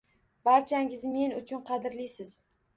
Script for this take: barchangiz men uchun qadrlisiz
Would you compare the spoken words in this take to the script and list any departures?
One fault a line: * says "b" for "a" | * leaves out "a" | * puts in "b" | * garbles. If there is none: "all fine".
all fine